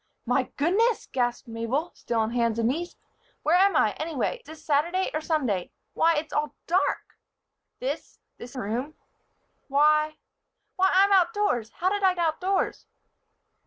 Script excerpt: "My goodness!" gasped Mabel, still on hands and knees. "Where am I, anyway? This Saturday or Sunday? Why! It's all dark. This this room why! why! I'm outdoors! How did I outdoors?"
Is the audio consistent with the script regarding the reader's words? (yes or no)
yes